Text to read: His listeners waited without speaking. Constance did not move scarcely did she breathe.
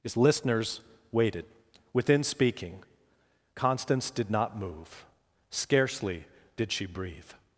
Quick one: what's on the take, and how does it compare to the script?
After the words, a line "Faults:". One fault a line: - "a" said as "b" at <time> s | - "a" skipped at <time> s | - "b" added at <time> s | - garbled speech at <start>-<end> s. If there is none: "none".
His listeners waited within speaking. Constance did not move scarcely did she breathe.
Faults:
- "without" said as "within" at 1.9 s